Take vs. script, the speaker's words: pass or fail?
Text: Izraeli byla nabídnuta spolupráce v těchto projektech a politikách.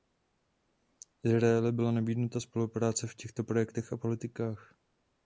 pass